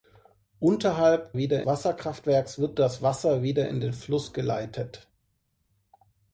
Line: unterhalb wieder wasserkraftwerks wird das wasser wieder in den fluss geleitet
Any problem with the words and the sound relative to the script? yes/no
no